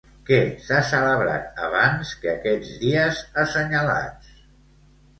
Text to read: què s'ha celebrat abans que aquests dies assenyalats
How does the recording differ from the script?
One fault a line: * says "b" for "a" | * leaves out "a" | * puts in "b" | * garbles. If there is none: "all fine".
all fine